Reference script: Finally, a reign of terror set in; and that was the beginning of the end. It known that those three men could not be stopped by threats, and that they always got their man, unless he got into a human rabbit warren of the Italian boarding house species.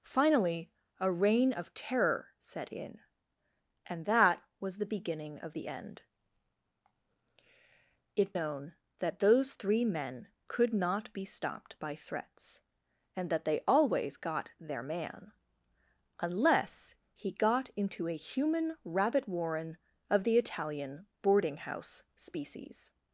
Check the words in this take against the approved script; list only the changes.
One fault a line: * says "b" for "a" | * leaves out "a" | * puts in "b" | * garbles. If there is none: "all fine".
all fine